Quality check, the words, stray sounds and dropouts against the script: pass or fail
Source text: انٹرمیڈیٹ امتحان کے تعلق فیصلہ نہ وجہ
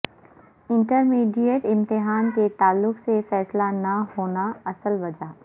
fail